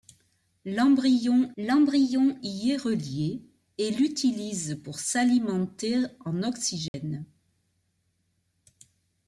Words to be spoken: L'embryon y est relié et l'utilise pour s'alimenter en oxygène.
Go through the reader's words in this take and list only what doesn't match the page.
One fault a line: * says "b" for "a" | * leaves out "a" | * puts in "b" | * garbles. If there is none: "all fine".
* puts in "l'embryon"